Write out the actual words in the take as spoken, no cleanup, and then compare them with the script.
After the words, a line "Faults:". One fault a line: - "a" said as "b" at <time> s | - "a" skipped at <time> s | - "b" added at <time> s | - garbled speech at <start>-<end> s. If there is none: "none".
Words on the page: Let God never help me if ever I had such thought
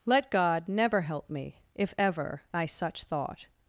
Let God never help me if ever I such thought
Faults:
- "had" skipped at 2.6 s